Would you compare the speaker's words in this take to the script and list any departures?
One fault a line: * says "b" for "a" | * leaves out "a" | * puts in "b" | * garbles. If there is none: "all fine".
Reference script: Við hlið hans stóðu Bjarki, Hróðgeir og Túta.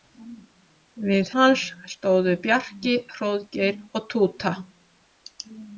* leaves out "hlið"